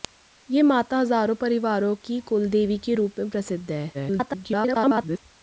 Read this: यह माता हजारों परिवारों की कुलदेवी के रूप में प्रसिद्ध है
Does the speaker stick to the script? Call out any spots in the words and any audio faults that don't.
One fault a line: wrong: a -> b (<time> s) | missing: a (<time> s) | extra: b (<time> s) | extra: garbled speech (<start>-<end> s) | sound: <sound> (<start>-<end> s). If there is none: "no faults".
extra: garbled speech (3.9-5.2 s)